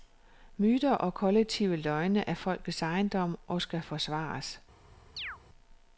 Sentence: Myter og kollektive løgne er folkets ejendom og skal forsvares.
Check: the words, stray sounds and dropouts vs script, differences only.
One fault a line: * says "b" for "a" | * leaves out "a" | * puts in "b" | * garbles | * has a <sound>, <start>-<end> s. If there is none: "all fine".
* has a chirp, 5.2-5.4 s